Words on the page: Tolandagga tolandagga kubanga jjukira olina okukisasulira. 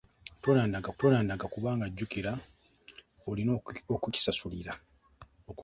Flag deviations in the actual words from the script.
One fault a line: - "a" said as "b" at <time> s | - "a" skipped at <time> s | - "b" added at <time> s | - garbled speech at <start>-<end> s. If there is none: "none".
none